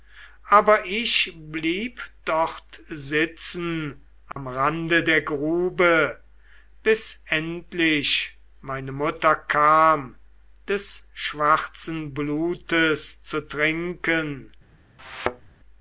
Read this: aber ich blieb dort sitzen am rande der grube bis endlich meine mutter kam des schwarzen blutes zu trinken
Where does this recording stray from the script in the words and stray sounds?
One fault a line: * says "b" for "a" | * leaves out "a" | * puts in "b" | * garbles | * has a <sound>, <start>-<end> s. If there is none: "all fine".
* has a dropout, 4.3-4.4 s
* has a thud, 15.0-15.5 s